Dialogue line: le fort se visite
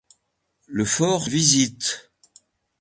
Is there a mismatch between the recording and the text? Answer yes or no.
yes